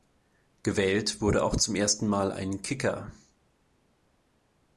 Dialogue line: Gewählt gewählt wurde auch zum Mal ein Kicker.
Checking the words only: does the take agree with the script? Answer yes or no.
no